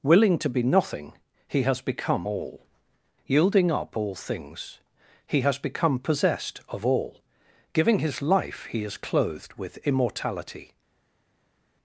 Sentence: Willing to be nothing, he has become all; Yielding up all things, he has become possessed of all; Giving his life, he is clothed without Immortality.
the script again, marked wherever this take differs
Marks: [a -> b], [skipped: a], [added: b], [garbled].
Willing to be nothing, he has become all; Yielding up all things, he has become possessed of all; Giving his life, he is clothed [without -> with] Immortality.